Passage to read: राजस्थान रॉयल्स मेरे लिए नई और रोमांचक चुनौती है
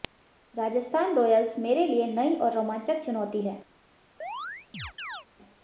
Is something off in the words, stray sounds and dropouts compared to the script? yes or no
yes